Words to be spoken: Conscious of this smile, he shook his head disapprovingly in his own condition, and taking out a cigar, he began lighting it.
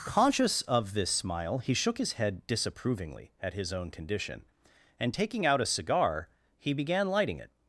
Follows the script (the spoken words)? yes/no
no